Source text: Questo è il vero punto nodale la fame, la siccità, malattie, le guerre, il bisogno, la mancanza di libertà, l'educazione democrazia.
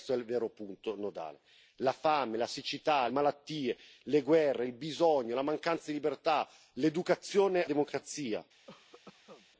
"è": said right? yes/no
yes